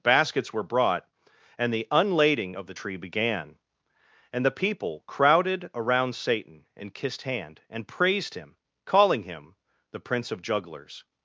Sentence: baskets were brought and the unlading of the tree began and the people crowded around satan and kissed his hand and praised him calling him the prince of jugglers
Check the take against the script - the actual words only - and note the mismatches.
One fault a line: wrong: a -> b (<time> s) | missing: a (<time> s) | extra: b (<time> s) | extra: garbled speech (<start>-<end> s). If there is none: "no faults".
missing: his (7.2 s)